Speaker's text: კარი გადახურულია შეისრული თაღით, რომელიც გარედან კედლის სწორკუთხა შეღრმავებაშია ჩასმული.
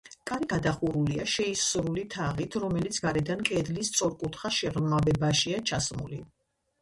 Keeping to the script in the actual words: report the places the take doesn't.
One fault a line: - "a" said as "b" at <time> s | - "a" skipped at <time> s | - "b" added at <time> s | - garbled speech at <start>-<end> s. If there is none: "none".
none